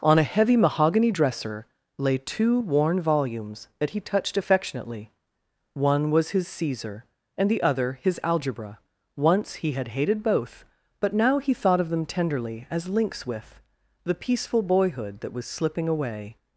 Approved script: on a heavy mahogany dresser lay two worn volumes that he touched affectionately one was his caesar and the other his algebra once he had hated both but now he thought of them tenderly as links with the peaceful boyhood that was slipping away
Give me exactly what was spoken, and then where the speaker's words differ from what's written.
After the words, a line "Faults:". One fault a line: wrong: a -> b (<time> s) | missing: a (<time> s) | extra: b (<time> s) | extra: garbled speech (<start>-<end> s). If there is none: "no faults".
on a heavy mahogany dresser lay two worn volumes that he touched affectionately one was his caesar and the other his algebra once he had hated both but now he thought of them tenderly as links with the peaceful boyhood that was slipping away
Faults:
no faults